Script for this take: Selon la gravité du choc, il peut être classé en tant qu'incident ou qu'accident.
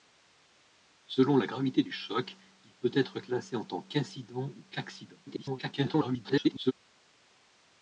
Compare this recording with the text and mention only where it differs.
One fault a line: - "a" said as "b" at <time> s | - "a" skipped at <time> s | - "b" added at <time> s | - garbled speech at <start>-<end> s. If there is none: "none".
- garbled speech at 5.3-6.7 s